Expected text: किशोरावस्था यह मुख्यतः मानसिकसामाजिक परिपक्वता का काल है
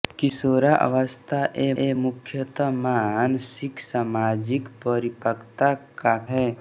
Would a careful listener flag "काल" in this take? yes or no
yes